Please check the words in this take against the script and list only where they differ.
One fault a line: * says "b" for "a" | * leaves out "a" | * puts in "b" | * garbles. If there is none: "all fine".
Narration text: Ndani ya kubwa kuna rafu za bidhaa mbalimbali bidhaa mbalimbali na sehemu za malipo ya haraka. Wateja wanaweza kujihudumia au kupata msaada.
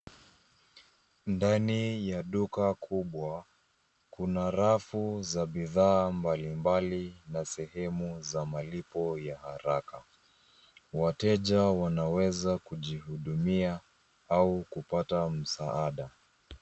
* puts in "duka"
* leaves out "bidhaa mbalimbali"